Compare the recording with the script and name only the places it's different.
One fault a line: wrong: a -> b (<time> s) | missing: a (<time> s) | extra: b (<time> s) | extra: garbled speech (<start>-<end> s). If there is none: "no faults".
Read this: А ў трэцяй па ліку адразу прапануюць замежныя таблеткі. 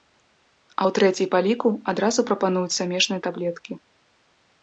no faults